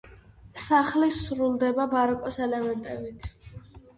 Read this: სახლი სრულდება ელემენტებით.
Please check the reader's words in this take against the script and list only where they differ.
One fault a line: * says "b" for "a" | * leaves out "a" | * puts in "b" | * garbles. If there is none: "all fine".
* puts in "ბაროკოს"